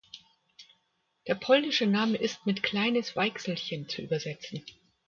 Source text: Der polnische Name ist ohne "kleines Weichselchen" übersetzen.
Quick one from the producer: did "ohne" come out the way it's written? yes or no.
no